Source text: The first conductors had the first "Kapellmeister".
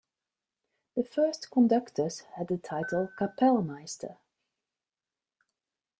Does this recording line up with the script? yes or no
no